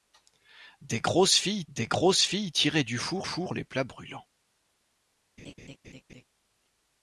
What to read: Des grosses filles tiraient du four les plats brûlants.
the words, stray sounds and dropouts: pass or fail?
fail